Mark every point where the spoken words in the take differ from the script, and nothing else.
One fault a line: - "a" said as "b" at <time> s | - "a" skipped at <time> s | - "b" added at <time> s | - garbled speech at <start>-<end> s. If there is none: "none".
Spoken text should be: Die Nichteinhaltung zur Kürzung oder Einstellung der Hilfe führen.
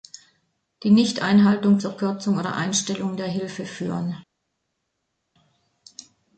none